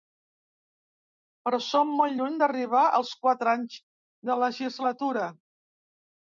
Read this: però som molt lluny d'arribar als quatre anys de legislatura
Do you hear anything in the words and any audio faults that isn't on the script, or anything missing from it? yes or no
no